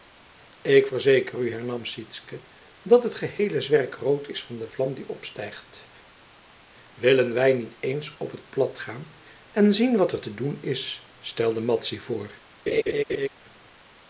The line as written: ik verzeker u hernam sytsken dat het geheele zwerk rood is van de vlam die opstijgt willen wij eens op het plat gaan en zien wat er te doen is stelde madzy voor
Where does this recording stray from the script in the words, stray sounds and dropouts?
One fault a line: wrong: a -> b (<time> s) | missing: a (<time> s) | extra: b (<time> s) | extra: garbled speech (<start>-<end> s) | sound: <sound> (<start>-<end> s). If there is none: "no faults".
extra: niet (7.5 s)
sound: laugh (12.7-13.3 s)